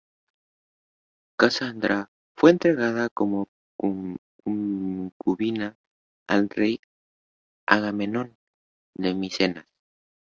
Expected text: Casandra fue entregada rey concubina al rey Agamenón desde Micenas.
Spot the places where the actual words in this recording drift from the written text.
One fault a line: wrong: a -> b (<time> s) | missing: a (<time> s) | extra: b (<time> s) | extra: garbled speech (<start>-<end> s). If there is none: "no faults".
wrong: rey -> como (3.1 s)
wrong: desde -> de (8.9 s)